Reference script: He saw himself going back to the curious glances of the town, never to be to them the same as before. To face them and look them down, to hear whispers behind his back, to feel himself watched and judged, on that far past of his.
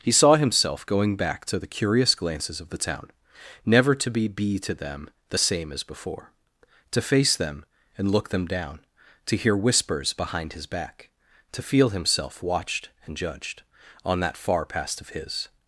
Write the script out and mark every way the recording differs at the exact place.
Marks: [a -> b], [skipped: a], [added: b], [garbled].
He saw himself going back to the curious glances of the town, never to be [added: be] to them the same as before. To face them and look them down, to hear whispers behind his back, to feel himself watched and judged, on that far past of his.